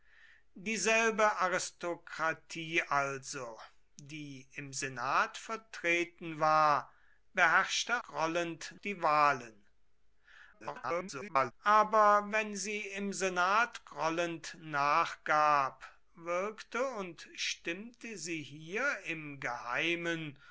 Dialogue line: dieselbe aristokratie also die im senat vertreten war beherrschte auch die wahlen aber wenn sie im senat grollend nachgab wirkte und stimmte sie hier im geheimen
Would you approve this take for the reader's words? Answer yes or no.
no